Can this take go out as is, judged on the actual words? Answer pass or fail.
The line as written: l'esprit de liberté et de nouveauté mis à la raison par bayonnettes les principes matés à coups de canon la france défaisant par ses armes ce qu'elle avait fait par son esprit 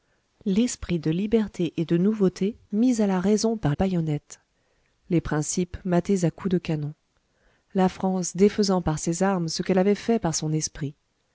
pass